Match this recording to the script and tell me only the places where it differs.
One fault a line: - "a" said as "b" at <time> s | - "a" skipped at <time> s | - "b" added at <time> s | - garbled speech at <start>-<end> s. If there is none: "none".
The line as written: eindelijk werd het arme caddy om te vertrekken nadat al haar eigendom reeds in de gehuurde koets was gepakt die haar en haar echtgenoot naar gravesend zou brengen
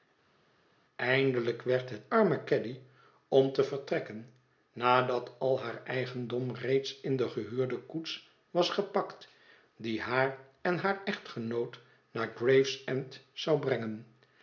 none